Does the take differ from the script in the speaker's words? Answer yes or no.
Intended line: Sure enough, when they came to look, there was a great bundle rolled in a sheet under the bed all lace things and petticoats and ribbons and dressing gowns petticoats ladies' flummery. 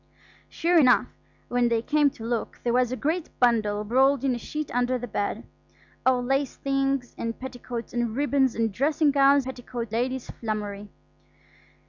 no